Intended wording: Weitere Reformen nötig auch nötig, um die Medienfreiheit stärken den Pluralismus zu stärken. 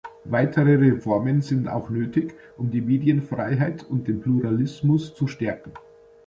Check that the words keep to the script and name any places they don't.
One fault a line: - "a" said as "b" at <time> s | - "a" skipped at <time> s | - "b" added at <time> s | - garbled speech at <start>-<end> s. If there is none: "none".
- "nötig" said as "sind" at 1.4 s
- "stärken" said as "und" at 3.9 s